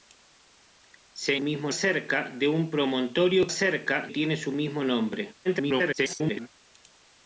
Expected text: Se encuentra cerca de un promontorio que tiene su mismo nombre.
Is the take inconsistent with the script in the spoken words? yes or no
yes